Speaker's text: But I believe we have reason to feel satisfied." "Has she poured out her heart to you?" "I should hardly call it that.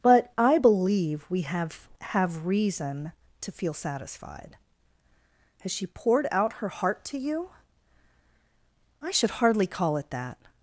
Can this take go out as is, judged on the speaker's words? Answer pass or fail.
fail